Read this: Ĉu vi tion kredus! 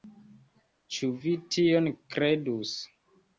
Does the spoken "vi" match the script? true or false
true